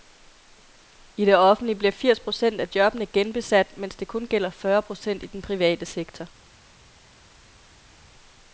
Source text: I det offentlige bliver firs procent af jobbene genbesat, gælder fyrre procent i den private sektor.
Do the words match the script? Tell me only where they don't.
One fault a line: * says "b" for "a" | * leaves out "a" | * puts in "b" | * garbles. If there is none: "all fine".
* puts in "mens det kun"